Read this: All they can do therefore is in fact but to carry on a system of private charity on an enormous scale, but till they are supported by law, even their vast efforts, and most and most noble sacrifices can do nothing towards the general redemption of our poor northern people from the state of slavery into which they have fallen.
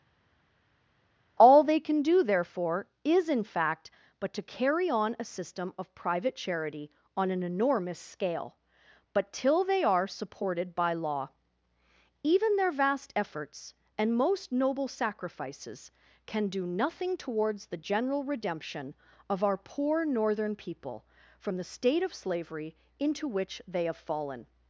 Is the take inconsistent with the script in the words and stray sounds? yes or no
yes